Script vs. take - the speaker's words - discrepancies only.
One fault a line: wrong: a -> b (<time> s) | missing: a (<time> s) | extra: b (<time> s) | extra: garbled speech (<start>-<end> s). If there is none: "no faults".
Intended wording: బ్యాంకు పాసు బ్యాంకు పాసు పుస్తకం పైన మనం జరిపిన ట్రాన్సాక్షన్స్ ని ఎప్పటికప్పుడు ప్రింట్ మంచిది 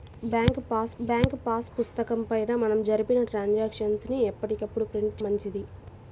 no faults